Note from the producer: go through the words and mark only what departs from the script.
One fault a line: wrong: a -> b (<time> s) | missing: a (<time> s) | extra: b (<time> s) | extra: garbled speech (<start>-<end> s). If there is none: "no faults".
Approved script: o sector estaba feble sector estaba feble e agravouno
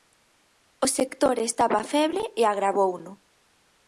missing: sector estaba feble (2.2 s)